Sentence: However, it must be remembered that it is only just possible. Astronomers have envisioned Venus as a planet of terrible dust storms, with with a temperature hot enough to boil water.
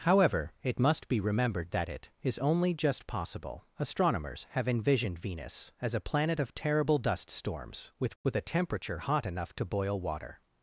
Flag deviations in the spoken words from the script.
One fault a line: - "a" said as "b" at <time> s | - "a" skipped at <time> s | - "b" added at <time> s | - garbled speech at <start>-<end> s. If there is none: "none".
none